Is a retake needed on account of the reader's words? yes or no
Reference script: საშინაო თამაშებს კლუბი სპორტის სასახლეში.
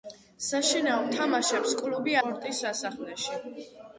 no